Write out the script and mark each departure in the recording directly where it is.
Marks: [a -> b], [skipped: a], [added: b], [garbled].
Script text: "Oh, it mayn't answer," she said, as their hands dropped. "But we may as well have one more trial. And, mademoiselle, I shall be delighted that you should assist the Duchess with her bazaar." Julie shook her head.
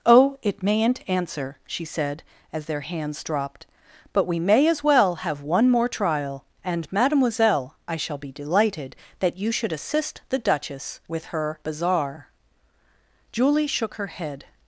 "Oh, it mayn't answer," she said, as their hands dropped. "But we may as well have one more trial. And, mademoiselle, I shall be delighted that you should assist the Duchess with her bazaar." Julie shook her head.